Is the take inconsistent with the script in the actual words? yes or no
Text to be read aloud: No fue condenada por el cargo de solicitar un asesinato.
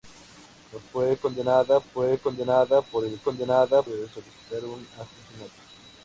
yes